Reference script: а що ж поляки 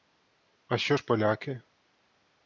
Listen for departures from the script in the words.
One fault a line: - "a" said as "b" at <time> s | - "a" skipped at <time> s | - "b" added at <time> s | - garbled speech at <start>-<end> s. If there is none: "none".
none